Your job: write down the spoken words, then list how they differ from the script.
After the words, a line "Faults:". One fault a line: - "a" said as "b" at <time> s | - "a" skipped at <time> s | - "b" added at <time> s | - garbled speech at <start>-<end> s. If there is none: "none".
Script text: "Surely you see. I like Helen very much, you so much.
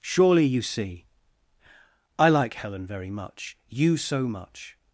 "Surely you see. I like Helen very much, you so much.
Faults:
none